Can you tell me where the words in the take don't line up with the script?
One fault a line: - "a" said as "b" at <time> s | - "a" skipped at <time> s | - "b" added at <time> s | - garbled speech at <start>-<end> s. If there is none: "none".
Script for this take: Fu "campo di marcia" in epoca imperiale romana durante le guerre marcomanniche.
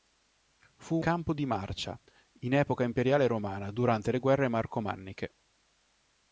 none